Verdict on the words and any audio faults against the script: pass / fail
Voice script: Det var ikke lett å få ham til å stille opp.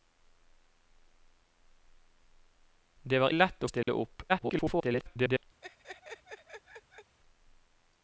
fail